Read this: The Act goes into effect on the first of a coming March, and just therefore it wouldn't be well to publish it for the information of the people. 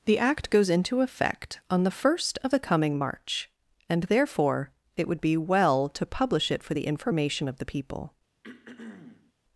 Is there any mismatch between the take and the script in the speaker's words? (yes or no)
yes